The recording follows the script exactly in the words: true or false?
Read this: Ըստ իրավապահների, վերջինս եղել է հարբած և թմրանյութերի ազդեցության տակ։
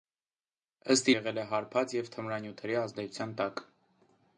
false